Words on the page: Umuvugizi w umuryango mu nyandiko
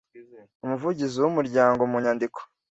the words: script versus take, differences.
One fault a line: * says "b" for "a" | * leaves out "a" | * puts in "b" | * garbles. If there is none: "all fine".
all fine